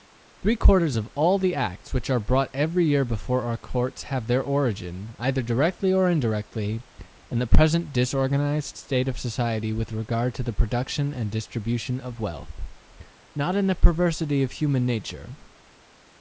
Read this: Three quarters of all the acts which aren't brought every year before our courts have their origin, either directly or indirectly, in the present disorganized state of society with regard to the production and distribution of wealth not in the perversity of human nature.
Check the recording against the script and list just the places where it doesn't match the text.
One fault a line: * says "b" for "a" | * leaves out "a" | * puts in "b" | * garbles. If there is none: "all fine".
* says "are" for "aren't"